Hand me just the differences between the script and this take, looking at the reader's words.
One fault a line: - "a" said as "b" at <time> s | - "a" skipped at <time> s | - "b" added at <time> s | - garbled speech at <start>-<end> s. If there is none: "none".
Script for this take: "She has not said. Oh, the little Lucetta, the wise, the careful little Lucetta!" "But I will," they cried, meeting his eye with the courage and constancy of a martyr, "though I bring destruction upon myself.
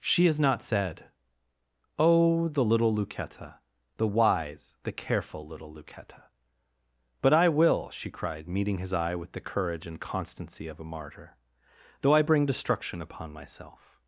- "they" said as "she" at 7.9 s